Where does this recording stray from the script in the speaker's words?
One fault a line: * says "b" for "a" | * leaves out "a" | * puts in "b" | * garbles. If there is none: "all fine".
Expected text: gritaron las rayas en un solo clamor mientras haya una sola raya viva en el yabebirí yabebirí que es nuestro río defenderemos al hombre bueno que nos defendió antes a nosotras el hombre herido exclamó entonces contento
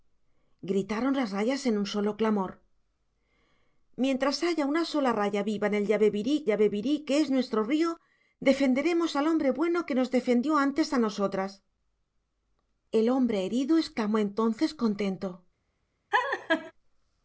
all fine